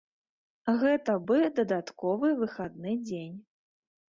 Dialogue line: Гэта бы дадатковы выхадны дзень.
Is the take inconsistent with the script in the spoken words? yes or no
no